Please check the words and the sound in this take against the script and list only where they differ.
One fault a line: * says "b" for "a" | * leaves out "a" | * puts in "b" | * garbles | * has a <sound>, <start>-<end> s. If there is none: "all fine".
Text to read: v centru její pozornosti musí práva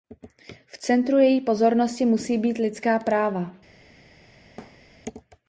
* puts in "být lidská"
* has a thud, 4.6-4.9 s